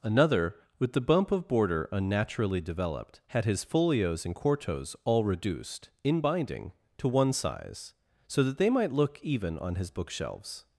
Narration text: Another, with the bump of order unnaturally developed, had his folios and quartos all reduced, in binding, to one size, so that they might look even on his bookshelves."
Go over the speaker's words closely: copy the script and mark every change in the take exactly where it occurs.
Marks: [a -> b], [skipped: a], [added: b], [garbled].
Another, with the bump of [order -> border] unnaturally developed, had his folios and quartos all reduced, in binding, to one size, so that they might look even on his bookshelves."